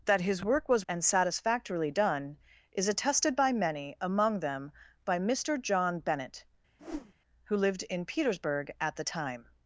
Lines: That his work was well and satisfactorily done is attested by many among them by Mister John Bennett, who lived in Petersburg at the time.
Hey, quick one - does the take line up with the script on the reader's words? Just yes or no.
no